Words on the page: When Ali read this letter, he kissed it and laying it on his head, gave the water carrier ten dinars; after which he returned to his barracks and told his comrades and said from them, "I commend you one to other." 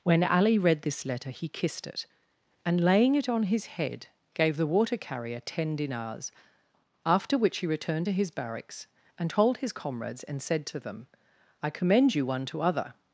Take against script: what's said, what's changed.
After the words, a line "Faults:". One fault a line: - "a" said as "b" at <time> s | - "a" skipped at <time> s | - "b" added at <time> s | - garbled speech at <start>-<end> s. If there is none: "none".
When Ali read this letter, he kissed it and laying it on his head, gave the water carrier ten dinars; after which he returned to his barracks and told his comrades and said to them, "I commend you one to other."
Faults:
- "from" said as "to" at 10.7 s